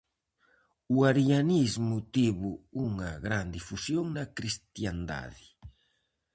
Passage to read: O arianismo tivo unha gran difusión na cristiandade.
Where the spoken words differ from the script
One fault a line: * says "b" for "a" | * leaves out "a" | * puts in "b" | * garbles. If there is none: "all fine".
all fine